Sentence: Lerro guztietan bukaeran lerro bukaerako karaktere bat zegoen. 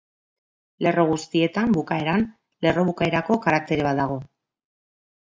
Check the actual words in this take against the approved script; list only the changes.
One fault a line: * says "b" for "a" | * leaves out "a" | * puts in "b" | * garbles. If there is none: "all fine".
* says "dago" for "zegoen"